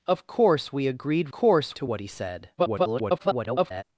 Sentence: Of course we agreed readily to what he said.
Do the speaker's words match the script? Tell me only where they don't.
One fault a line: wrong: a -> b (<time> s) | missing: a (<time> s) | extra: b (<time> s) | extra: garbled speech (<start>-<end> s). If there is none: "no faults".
wrong: readily -> course (1.3 s)
extra: garbled speech (2.6-3.8 s)